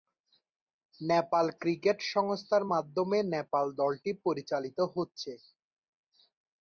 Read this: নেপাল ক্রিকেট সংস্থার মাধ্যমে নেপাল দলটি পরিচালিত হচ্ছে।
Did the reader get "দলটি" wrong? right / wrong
right